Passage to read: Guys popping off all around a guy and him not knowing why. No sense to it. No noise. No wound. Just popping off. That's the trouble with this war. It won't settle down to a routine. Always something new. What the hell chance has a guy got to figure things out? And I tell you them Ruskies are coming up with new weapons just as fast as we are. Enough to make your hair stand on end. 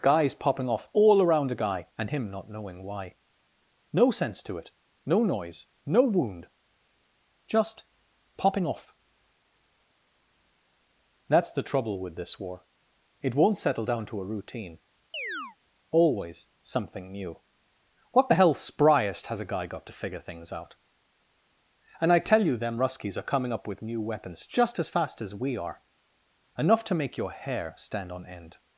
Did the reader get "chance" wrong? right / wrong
wrong